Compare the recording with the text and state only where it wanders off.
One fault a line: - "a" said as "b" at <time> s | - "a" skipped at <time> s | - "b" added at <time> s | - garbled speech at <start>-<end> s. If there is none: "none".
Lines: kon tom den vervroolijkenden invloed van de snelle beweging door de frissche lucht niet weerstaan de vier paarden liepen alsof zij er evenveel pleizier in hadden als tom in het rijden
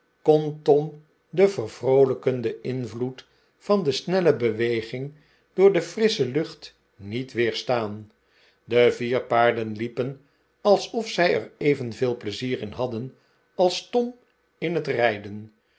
none